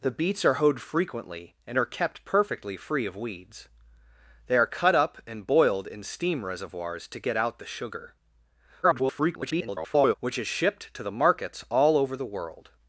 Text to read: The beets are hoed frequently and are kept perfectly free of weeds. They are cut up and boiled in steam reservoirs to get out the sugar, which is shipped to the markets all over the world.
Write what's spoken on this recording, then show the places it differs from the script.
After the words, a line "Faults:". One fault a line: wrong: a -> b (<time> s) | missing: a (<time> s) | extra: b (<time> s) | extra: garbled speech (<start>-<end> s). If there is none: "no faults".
The beets are hoed frequently and are kept perfectly free of weeds. They are cut up and boiled in steam reservoirs to get out the sugar, [garbled] which is shipped to the markets all over the world.
Faults:
extra: garbled speech (8.8-10.1 s)